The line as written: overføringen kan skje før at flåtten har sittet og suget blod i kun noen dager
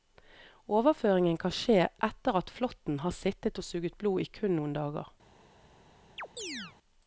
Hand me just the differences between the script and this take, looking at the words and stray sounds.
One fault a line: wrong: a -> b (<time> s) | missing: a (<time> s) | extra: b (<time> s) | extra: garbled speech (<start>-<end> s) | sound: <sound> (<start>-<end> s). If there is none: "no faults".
wrong: før -> etter (2.1 s)
sound: chirp (6.2-6.8 s)